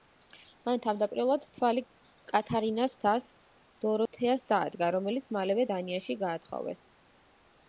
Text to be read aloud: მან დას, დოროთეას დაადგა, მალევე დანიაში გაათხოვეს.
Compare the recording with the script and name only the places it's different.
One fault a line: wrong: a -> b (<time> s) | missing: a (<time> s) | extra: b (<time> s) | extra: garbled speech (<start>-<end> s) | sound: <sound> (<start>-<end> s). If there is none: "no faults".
extra: თავდაპირველად თვალი კათარინას (0.8 s)
sound: dropout (4.1-4.1 s)
extra: რომელიც (5.0 s)